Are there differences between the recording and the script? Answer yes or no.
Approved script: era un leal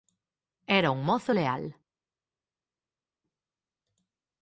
yes